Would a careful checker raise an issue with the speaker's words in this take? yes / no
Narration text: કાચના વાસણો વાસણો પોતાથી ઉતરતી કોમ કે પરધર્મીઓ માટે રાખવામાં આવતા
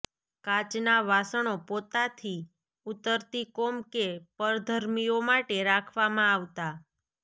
yes